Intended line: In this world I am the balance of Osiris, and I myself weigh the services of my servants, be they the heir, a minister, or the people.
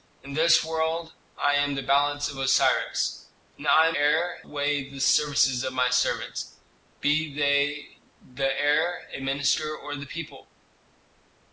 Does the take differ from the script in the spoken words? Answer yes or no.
yes